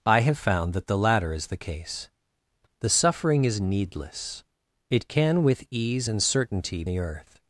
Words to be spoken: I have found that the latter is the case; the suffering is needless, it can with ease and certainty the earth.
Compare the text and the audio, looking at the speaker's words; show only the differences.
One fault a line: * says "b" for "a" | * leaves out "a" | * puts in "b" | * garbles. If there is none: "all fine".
all fine